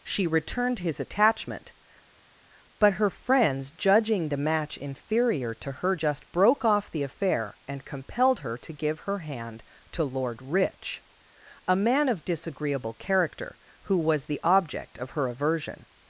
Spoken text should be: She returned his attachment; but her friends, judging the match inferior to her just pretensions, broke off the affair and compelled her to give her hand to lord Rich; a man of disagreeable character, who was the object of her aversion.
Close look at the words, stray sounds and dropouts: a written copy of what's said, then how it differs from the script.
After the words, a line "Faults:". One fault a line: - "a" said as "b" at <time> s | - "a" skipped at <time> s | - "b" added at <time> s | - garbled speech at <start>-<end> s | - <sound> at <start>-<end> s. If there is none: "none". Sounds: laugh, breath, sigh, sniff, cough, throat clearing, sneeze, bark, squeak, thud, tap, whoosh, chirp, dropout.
She returned his attachment; but her friends, judging the match inferior to her just broke off the affair and compelled her to give her hand to lord Rich; a man of disagreeable character, who was the object of her aversion.
Faults:
- "pretensions" skipped at 6.3 s